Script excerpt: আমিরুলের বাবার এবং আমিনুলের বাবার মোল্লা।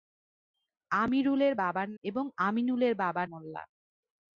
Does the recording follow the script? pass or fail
pass